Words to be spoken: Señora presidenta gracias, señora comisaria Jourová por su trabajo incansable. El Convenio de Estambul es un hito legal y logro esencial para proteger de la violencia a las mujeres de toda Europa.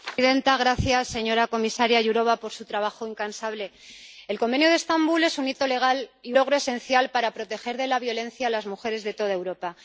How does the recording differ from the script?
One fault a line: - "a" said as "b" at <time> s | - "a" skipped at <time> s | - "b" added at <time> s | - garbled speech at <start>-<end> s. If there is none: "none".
none